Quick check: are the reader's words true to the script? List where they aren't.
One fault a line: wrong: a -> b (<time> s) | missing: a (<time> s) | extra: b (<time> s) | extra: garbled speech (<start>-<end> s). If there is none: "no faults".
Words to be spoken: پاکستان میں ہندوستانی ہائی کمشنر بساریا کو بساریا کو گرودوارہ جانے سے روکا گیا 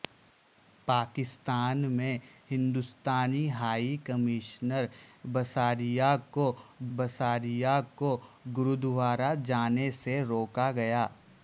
no faults